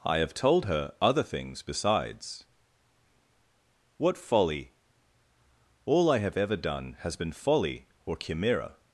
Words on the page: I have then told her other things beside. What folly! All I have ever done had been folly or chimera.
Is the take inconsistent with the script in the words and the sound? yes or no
yes